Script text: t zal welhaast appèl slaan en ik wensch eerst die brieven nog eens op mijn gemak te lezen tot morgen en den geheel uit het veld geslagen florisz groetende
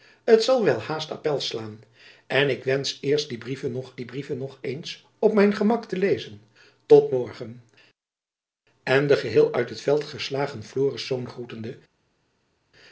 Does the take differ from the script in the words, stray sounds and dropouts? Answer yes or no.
yes